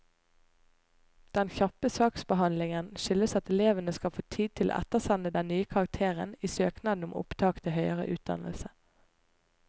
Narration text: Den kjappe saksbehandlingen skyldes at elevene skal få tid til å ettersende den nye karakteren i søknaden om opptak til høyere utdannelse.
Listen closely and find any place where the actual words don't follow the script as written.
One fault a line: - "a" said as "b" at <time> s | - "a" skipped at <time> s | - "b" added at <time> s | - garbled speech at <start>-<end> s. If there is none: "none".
none